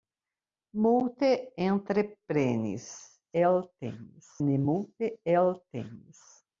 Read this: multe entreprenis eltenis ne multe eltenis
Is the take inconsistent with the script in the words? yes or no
no